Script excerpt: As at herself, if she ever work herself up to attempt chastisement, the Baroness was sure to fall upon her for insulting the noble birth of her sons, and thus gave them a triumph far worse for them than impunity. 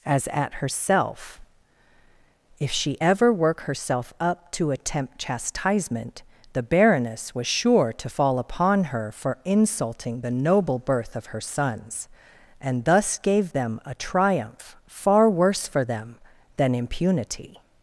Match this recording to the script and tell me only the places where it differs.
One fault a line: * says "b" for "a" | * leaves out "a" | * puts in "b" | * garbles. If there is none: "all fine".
all fine